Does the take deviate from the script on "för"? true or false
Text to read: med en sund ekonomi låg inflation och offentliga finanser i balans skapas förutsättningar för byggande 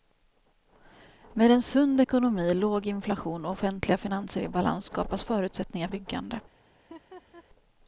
true